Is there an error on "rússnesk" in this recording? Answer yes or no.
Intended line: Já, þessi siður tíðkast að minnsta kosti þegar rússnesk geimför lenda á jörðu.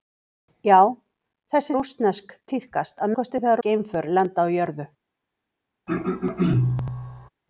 yes